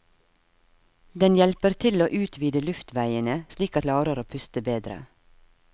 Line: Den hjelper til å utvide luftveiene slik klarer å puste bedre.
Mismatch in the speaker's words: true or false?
false